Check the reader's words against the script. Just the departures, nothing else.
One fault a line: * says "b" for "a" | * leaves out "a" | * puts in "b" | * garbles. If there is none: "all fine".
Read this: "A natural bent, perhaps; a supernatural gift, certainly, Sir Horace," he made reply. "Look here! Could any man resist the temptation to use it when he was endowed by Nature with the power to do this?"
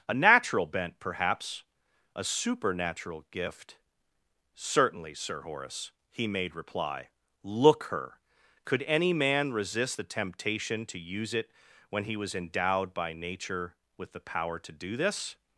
* says "her" for "here"